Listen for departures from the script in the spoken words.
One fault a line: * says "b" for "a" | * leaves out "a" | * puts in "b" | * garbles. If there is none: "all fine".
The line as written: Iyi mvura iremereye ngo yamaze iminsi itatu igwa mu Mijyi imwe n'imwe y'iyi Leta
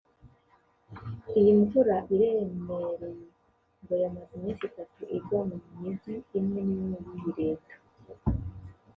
all fine